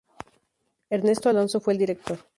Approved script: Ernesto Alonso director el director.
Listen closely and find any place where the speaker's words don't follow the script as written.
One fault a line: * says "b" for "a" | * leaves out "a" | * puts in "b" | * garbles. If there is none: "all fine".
* says "fue" for "director"